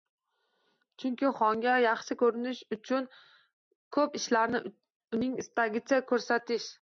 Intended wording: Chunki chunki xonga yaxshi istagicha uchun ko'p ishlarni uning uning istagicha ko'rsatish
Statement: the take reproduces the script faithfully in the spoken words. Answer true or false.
false